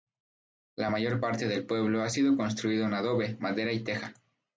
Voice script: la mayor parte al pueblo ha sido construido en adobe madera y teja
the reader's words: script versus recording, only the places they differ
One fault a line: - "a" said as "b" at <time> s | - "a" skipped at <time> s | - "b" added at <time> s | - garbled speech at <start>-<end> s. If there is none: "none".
- "al" said as "del" at 1.5 s